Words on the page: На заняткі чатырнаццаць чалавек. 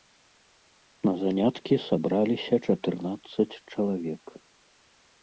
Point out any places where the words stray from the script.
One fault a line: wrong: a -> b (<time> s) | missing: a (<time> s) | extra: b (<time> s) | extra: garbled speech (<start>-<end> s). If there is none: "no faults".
extra: сабраліся (1.9 s)